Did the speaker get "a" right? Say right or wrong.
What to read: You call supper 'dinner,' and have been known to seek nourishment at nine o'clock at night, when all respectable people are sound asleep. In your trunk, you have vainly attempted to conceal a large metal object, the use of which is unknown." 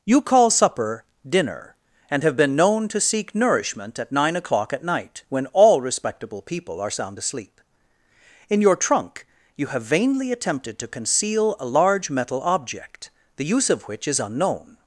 right